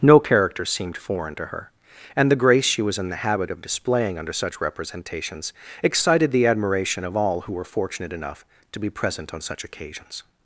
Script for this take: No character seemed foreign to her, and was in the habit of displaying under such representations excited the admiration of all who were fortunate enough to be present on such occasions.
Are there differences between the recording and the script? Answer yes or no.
yes